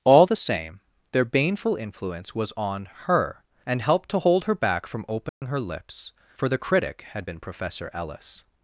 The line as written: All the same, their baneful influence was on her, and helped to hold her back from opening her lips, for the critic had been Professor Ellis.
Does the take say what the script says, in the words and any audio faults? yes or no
no